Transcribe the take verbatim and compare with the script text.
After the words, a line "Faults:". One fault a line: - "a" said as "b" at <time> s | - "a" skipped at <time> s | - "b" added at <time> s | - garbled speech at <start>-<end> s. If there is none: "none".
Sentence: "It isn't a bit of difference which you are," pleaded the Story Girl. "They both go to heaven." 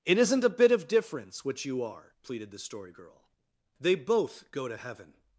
"It isn't a bit of difference which you are," pleaded the Story Girl. "They both go to heaven."
Faults:
none